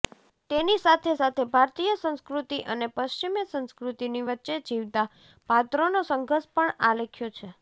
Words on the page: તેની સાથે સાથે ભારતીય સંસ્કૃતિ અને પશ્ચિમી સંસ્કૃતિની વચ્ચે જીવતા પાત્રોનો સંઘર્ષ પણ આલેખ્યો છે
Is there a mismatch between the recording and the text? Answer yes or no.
no